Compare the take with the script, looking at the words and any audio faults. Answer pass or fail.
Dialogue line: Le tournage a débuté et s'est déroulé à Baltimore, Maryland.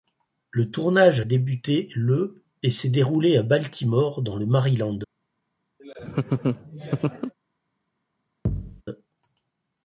fail